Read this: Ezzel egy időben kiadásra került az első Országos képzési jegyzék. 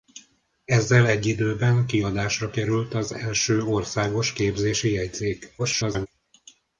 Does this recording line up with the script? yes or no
no